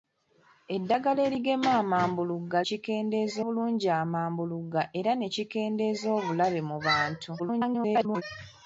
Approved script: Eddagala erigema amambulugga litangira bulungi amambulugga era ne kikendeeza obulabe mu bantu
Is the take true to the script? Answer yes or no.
no